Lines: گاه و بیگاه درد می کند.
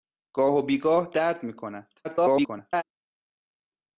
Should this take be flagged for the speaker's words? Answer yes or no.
yes